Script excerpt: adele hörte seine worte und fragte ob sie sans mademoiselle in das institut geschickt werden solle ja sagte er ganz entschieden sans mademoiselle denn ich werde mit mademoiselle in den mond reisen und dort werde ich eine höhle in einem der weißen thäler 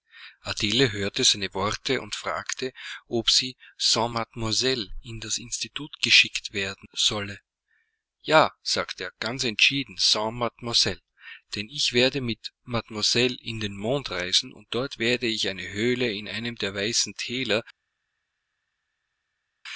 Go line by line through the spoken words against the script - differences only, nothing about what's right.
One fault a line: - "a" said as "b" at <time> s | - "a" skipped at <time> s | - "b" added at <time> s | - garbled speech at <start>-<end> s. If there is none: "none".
none